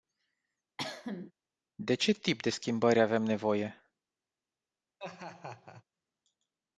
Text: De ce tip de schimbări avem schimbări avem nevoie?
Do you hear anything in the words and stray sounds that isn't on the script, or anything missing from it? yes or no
yes